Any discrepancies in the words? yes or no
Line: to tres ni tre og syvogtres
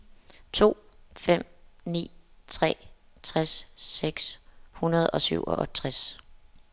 yes